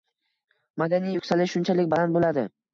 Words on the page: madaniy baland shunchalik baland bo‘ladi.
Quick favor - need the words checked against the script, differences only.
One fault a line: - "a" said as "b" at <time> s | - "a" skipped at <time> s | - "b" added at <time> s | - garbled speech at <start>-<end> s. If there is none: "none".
- "baland" said as "yuksalish" at 1.2 s